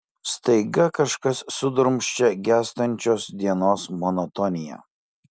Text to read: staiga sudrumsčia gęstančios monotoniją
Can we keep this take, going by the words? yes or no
no